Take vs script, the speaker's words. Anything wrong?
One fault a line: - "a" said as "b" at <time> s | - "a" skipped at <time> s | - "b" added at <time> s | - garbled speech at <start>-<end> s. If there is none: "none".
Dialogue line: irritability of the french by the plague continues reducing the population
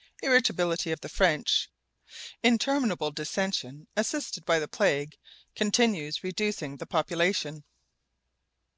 - "interminable dissension assisted" added at 2.4 s